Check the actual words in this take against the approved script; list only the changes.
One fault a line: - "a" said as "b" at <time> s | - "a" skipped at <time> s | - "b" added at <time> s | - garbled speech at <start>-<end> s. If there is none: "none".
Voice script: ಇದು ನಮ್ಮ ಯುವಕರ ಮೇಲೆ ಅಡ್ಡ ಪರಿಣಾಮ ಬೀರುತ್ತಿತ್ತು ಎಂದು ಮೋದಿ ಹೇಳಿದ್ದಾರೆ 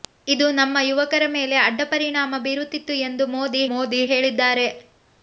- "ಮೋದಿ" added at 3.7 s